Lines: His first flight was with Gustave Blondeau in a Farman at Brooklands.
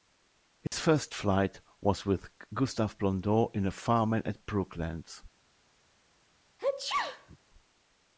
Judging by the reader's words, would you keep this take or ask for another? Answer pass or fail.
pass